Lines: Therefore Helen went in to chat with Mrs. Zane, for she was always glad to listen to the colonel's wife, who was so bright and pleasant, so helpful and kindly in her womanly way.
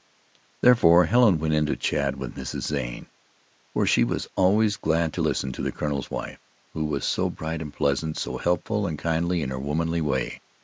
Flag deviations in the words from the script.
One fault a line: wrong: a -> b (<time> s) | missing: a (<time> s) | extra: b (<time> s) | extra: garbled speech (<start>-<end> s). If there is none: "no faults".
no faults